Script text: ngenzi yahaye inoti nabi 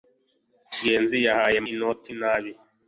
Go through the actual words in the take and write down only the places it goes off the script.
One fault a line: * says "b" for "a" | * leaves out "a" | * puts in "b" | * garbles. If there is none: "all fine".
all fine